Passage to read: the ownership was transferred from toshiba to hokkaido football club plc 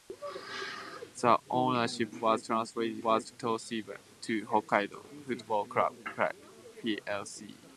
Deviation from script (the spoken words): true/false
true